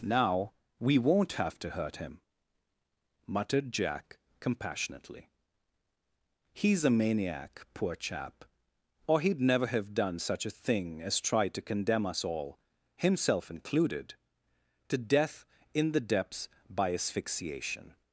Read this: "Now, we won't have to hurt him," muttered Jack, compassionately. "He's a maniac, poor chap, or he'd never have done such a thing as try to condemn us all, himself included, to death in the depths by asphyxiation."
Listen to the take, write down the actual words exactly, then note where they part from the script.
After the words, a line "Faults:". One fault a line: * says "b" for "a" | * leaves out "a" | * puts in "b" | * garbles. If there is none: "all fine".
"Now, we won't have to hurt him," muttered Jack, compassionately. "He's a maniac, poor chap, or he'd never have done such a thing as try to condemn us all, himself included, to death in the depths by asphyxiation."
Faults:
all fine